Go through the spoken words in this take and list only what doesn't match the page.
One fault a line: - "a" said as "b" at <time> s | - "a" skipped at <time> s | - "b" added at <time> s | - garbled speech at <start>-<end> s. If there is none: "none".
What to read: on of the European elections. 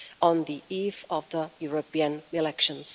- "the eve" added at 0.5 s